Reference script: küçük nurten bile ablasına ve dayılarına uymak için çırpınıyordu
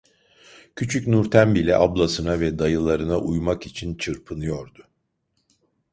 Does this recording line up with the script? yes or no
yes